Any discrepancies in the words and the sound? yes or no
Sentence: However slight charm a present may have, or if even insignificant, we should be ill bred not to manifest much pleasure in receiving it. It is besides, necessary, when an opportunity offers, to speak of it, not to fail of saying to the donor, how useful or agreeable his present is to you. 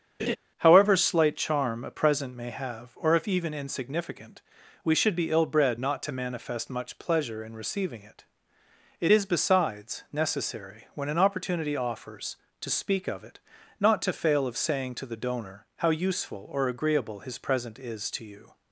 yes